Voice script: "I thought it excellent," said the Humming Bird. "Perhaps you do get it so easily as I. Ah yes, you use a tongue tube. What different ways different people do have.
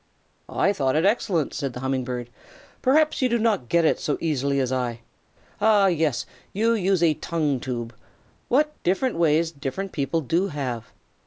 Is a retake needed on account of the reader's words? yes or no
yes